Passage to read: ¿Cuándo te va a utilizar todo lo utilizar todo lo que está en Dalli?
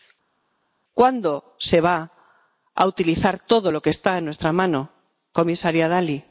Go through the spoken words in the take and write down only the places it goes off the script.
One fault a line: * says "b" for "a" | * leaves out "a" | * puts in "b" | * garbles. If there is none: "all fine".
* says "se" for "te"
* says "que está en nuestra mano comisaria" for "utilizar todo lo que está en"